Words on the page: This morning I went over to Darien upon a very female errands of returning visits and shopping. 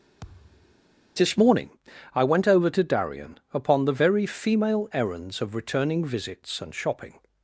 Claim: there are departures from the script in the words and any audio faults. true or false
true